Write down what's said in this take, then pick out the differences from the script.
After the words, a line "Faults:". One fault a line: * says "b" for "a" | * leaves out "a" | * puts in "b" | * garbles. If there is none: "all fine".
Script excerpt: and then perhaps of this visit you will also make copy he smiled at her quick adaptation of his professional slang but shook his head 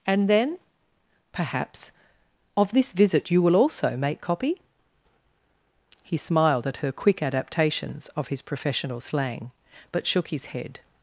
and then perhaps of this visit you will also make copy he smiled at her quick adaptations of his professional slang but shook his head
Faults:
* says "adaptations" for "adaptation"